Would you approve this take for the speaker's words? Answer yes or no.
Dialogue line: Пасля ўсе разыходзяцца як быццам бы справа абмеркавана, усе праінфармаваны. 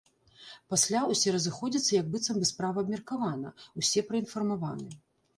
yes